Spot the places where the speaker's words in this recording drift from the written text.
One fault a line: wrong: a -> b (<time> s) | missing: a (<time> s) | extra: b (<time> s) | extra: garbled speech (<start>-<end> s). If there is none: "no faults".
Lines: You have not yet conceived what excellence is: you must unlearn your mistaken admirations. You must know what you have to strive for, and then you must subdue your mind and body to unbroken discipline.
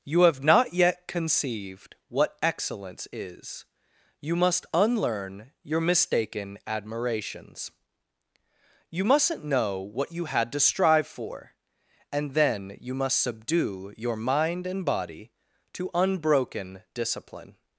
wrong: must -> mustn't (9.0 s)
wrong: have -> had (10.3 s)